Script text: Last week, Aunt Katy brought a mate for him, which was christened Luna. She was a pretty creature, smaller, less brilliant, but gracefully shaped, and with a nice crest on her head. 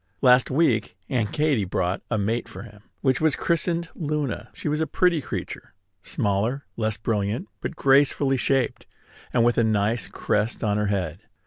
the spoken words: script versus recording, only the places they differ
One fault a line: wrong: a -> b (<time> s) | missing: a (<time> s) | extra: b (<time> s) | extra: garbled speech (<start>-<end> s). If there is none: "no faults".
no faults